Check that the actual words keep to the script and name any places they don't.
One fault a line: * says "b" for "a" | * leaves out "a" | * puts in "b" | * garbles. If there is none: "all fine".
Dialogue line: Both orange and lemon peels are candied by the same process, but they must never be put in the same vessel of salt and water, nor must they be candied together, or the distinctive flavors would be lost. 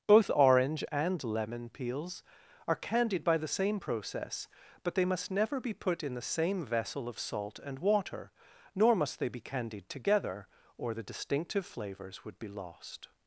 all fine